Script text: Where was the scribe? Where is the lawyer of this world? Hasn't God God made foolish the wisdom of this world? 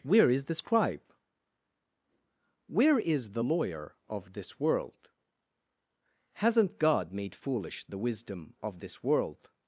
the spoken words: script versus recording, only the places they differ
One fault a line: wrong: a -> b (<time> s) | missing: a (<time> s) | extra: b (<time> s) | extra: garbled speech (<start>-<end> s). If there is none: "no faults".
wrong: was -> is (0.3 s)
missing: God (7.1 s)